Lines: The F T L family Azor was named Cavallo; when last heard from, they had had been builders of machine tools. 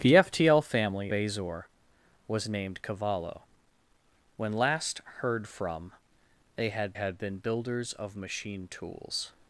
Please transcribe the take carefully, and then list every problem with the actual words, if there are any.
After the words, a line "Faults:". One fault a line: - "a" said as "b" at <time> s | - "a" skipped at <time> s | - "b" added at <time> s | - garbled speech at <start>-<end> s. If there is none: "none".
The F T L family Azor was named Cavallo; when last heard from, they had had been builders of machine tools.
Faults:
none